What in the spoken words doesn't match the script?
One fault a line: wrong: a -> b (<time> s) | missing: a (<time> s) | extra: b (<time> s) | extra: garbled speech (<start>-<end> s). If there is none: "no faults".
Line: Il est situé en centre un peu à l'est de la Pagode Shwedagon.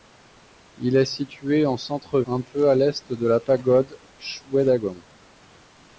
no faults